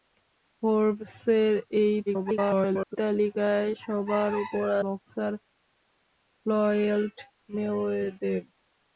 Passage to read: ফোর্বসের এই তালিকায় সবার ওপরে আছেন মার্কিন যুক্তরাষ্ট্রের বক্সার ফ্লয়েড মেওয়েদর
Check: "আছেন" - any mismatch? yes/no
yes